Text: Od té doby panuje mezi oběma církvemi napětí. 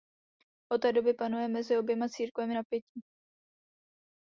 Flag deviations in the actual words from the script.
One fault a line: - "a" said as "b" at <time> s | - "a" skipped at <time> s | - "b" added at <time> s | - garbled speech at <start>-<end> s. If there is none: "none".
none